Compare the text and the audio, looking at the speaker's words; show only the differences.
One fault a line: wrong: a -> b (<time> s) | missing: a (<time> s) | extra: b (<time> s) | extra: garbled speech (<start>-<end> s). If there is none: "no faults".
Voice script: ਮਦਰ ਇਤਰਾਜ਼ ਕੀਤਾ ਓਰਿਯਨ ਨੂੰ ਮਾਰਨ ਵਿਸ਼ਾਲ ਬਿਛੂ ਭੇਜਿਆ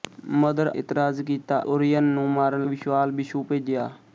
no faults